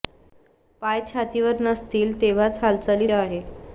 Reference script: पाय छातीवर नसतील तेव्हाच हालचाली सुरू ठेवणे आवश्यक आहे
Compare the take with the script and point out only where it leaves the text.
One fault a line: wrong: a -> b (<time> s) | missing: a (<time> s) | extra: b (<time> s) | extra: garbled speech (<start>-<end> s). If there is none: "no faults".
missing: सुरू ठेवणे आवश्यक (3.1 s)